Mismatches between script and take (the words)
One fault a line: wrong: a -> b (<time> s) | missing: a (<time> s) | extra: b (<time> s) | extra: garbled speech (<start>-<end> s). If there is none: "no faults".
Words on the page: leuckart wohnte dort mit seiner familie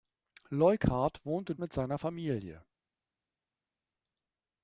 missing: dort (1.6 s)